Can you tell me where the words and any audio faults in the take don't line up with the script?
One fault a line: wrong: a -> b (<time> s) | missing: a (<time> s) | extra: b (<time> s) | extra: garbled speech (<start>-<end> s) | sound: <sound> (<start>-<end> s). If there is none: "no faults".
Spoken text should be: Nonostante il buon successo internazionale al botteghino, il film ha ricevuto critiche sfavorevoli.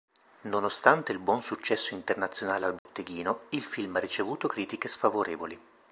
sound: dropout (2.8-2.9 s)